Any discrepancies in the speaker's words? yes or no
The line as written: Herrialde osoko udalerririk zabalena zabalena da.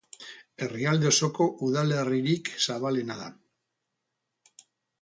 yes